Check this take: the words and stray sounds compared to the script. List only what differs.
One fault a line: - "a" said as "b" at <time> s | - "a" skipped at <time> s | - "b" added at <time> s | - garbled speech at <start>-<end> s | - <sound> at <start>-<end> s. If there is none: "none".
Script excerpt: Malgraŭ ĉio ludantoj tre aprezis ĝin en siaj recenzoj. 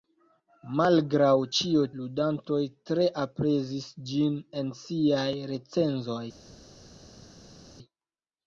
none